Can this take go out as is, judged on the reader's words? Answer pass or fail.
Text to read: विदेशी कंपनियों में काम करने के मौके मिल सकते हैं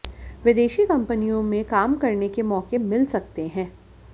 pass